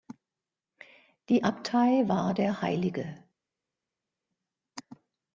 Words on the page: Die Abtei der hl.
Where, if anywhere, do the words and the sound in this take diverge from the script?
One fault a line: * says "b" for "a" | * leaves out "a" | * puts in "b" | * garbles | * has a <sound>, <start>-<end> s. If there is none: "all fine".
* puts in "war"